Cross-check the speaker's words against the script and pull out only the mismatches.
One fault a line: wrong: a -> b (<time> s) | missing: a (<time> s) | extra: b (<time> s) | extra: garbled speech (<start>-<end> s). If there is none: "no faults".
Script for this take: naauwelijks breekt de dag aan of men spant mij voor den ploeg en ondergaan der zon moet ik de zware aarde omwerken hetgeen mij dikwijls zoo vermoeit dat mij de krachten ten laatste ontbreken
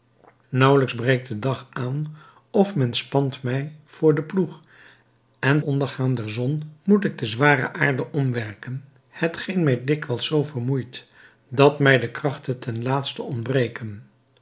no faults